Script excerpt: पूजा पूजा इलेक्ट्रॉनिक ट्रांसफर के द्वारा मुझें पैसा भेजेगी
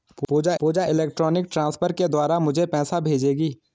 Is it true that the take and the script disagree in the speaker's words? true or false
false